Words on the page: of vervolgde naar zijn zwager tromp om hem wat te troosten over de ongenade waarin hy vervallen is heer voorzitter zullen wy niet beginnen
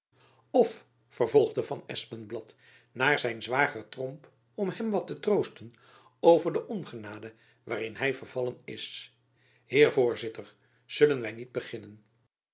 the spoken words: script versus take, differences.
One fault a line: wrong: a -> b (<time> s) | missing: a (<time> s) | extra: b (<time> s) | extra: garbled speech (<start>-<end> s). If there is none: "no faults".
extra: van espenblad (1.6 s)